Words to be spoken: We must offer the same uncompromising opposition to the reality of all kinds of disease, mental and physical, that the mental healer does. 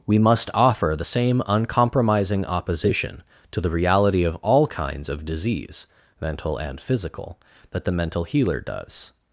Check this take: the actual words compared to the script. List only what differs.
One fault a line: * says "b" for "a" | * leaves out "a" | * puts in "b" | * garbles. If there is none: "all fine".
all fine